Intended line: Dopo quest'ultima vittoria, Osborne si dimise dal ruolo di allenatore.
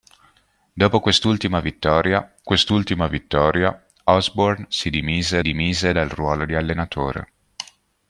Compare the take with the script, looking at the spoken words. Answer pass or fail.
fail